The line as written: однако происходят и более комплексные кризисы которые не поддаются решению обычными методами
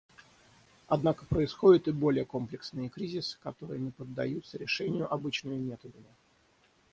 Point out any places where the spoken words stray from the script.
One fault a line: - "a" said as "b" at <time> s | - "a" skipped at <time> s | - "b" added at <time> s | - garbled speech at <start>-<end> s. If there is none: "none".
none